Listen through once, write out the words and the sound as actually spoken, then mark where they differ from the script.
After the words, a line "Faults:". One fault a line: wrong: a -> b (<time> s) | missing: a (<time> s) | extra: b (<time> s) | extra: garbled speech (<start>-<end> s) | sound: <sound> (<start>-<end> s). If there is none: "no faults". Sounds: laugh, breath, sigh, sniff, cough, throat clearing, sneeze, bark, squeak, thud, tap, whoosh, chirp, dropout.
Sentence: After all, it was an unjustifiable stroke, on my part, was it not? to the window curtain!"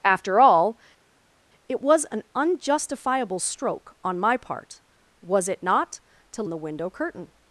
After all, it was an unjustifiable stroke, on my part, was it not? to the window curtain!"
Faults:
no faults